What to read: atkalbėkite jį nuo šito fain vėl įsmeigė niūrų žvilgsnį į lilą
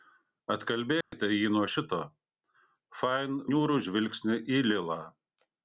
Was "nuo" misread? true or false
false